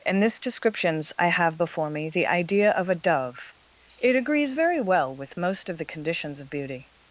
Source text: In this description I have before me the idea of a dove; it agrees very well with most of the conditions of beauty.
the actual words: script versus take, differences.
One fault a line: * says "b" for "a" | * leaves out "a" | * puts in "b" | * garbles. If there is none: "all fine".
* says "descriptions" for "description"